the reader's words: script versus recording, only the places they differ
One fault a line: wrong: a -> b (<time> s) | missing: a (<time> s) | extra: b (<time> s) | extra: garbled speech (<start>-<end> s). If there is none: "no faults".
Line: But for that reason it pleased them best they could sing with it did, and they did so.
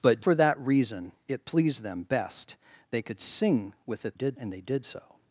no faults